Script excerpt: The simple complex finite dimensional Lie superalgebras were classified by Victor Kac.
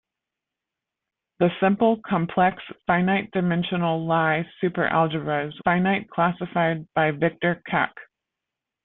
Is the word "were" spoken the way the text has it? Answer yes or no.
no